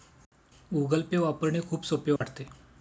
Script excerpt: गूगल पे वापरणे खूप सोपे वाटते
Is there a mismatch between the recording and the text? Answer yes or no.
no